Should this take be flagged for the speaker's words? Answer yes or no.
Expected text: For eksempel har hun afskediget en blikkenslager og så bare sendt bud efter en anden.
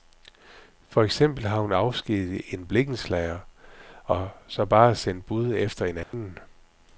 no